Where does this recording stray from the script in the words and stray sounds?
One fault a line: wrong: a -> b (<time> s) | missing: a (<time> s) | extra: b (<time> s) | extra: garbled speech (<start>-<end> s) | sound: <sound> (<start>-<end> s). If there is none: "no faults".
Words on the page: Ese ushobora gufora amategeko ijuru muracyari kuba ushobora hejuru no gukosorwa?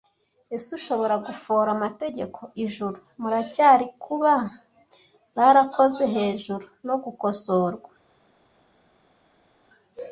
wrong: ushobora -> barakoze (5.3 s)